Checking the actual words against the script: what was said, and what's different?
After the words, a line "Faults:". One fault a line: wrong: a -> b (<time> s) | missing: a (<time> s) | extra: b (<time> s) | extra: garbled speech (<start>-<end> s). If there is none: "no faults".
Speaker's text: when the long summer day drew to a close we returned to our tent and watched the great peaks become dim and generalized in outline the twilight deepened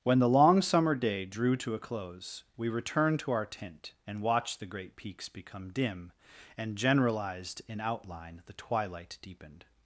when the long summer day drew to a close we returned to our tent and watched the great peaks become dim and generalized in outline the twilight deepened
Faults:
no faults